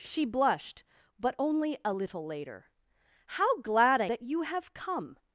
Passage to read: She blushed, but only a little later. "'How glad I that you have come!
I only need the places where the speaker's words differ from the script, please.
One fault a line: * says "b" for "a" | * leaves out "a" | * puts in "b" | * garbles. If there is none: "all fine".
all fine